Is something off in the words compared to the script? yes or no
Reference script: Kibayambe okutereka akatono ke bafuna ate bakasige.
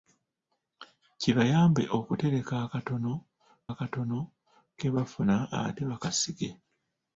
yes